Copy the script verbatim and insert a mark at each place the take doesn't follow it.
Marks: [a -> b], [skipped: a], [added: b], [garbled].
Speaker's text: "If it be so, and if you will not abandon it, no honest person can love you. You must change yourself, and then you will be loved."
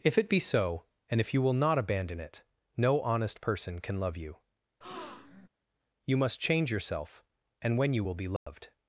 "If it be so, and if you will not abandon it, no honest person can love you. You must change yourself, and [then -> when] you will be loved."